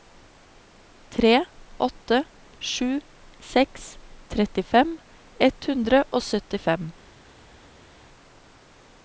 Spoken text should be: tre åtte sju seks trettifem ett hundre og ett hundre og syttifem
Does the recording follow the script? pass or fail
fail